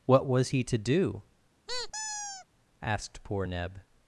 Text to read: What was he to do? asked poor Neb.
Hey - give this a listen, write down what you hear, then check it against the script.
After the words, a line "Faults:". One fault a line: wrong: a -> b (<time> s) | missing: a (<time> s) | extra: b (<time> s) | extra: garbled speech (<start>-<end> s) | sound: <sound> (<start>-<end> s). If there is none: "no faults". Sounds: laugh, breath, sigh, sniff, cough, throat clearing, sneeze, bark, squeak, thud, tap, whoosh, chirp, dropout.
What was he to do? asked poor Neb.
Faults:
sound: squeak (1.7-2.5 s)